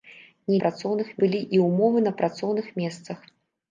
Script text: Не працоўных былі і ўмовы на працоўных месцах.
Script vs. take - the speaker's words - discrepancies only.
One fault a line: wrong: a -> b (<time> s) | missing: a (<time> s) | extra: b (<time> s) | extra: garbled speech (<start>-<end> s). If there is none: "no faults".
no faults